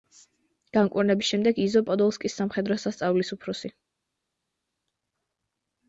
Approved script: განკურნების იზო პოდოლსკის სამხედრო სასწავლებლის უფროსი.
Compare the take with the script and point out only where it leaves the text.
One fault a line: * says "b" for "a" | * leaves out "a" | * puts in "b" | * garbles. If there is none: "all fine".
* puts in "შემდეგ"